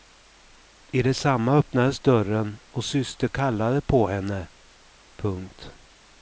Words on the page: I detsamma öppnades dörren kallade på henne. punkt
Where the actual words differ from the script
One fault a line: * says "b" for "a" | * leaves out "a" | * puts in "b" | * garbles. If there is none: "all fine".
* puts in "och syster"